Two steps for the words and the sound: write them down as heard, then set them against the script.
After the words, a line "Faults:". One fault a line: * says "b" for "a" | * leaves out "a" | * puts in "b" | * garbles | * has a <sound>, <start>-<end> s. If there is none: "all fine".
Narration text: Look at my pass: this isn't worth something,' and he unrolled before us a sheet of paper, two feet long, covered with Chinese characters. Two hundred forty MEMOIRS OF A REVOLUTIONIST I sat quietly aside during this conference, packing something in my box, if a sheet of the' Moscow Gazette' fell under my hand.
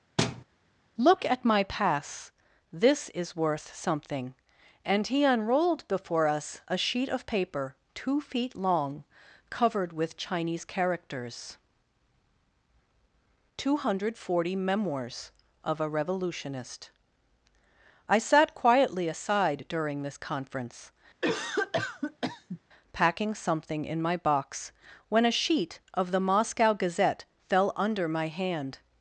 Look at my pass: this is worth something,' and he unrolled before us a sheet of paper, two feet long, covered with Chinese characters. Two hundred forty MEMOIRS OF A REVOLUTIONIST I sat quietly aside during this conference, packing something in my box, when a sheet of the' Moscow Gazette' fell under my hand.
Faults:
* has a thud, 0.2-0.4 s
* says "is" for "isn't"
* has a cough, 21.2-22.6 s
* says "when" for "if"